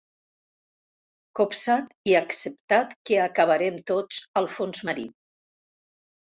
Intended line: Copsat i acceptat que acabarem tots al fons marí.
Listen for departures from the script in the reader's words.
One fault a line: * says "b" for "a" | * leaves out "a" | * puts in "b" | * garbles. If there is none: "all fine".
all fine